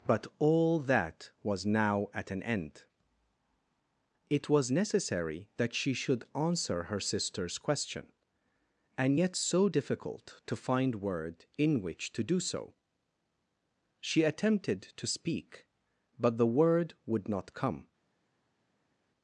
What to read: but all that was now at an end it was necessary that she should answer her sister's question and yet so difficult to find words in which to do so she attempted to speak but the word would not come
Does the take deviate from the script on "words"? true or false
true